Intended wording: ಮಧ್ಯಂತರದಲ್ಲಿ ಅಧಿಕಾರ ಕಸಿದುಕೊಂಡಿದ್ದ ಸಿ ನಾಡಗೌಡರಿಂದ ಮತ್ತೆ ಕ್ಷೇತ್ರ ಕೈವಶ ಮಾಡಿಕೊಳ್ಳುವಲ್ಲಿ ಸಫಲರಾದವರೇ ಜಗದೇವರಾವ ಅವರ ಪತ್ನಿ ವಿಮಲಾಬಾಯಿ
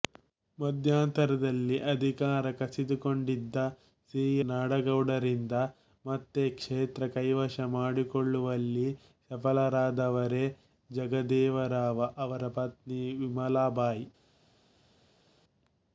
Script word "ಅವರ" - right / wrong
right